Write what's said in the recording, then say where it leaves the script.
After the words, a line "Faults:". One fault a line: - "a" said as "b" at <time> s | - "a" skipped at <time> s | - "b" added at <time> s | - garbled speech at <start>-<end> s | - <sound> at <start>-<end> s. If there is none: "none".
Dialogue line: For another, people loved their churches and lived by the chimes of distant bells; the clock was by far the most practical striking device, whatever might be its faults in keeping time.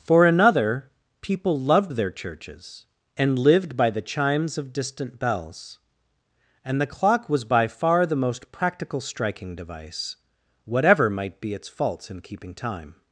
For another, people loved their churches and lived by the chimes of distant bells; and the clock was by far the most practical striking device, whatever might be its faults in keeping time.
Faults:
- "and" added at 6.6 s